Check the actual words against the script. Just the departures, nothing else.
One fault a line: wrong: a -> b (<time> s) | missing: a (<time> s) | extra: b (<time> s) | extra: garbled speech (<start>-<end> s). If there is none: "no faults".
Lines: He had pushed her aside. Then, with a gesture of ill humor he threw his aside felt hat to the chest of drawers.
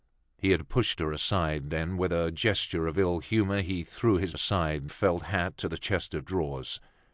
no faults